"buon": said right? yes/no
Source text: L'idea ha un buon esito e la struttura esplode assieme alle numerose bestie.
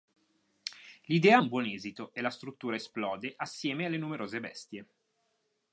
yes